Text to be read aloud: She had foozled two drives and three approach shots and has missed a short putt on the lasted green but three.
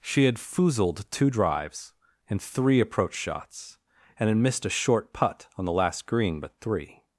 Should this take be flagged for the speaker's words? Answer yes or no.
yes